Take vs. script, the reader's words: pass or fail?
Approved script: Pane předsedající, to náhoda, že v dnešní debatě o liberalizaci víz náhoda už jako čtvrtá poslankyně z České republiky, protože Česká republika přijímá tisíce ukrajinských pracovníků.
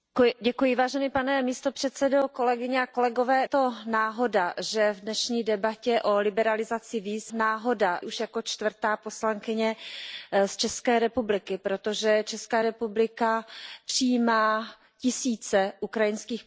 pass